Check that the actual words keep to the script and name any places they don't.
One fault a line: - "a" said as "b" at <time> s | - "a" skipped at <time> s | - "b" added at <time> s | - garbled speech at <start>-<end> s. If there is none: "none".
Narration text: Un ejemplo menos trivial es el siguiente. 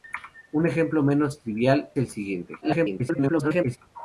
- "es" skipped at 1.9 s
- garbled speech at 2.6-3.8 s